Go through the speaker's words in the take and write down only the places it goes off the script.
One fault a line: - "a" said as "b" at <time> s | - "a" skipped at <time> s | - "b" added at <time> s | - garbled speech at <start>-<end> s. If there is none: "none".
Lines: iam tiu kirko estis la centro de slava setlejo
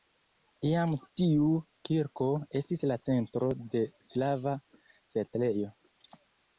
none